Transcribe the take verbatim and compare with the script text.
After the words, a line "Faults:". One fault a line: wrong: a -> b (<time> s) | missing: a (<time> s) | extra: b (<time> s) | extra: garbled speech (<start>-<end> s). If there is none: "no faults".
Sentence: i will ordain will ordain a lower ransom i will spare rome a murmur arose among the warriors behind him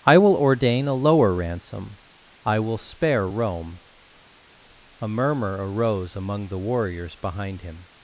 i will ordain a lower ransom i will spare rome a murmur arose among the warriors behind him
Faults:
missing: will ordain (0.9 s)